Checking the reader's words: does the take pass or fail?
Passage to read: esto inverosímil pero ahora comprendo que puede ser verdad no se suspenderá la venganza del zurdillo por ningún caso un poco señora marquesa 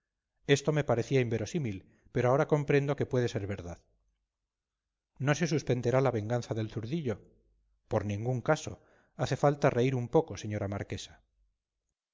fail